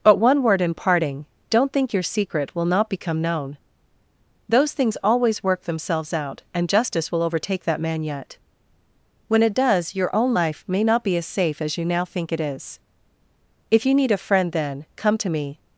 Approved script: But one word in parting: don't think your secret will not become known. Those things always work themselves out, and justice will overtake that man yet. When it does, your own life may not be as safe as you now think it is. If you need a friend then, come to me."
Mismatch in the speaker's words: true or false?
false